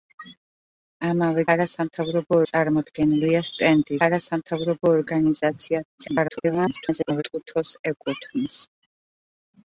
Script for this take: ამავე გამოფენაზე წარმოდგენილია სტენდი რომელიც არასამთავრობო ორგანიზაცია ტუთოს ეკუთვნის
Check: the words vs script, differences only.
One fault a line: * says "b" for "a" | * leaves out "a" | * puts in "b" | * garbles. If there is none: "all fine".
* says "არასამთავრობო" for "გამოფენაზე"
* leaves out "რომელიც"
* garbles